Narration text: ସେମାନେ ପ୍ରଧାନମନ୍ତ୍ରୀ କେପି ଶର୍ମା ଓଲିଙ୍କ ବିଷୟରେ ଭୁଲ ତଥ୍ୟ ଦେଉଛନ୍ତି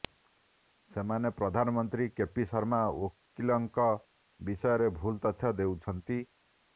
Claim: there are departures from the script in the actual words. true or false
false